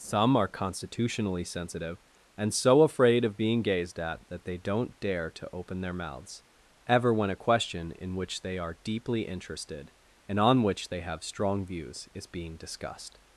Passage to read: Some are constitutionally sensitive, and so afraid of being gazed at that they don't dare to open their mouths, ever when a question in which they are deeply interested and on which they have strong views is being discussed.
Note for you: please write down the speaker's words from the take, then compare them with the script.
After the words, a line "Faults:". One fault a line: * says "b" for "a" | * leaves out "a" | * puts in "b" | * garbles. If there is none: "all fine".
Some are constitutionally sensitive, and so afraid of being gazed at that they don't dare to open their mouths, ever when a question in which they are deeply interested and on which they have strong views is being discussed.
Faults:
all fine